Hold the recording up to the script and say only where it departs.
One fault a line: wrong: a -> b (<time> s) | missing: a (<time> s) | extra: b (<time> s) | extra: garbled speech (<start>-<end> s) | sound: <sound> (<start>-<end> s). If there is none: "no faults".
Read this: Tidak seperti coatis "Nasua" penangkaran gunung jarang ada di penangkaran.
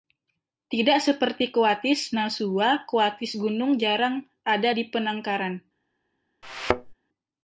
wrong: penangkaran -> coatis (2.9 s)
sound: thud (6.4-6.9 s)